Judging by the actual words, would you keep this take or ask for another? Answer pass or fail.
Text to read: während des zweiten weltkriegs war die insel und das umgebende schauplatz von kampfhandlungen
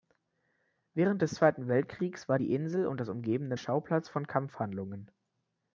pass